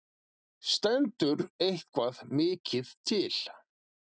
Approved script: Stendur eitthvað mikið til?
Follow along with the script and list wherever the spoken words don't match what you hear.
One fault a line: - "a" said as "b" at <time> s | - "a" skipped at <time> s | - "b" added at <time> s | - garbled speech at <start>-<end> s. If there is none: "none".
none